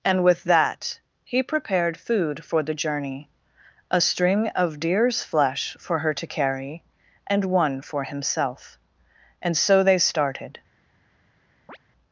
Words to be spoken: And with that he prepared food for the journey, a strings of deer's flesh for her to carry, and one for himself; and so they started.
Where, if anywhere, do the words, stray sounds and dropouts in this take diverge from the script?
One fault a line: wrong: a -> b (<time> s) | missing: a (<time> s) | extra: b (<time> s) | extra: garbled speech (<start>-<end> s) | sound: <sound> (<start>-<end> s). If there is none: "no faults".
wrong: strings -> string (4.0 s)
sound: chirp (11.7-11.8 s)